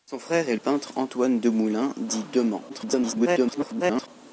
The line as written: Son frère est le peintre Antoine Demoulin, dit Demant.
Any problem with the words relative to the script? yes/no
yes